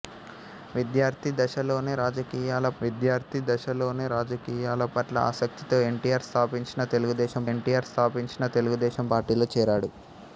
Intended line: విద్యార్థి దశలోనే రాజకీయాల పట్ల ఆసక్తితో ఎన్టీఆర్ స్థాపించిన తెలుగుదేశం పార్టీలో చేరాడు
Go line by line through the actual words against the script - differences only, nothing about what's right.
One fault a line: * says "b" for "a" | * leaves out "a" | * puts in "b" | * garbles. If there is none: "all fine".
* puts in "విద్యార్థి దశలోనే రాజకీయాల"
* puts in "ఎన్టీఆర్ స్థాపించిన తెలుగుదేశం"